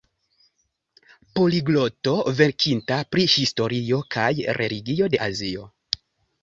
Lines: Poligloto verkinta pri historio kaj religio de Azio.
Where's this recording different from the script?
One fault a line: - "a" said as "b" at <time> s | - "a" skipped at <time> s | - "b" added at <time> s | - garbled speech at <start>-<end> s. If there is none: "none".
none